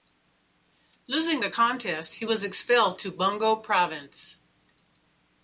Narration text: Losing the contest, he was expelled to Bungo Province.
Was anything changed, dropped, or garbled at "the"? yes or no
no